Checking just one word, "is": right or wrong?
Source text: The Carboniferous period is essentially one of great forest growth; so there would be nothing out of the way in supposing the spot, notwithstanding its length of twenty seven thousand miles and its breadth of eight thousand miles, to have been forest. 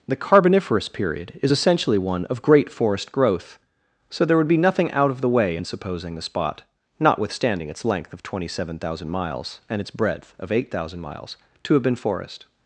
right